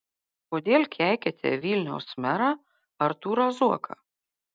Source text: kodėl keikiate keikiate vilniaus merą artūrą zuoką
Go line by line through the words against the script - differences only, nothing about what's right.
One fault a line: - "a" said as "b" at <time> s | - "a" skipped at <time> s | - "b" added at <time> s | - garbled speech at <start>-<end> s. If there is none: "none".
- "keikiate" skipped at 1.5 s